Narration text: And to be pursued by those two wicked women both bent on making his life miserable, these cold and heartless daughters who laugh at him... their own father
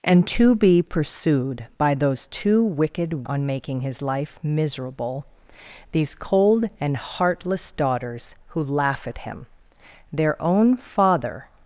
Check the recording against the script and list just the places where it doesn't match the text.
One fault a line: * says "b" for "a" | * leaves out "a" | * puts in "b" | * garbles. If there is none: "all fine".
* leaves out "women both bent"